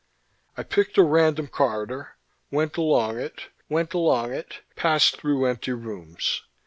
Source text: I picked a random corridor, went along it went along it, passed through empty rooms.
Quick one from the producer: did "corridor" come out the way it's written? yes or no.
yes